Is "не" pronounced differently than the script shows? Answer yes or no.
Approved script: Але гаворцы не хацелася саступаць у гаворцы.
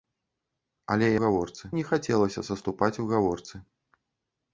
no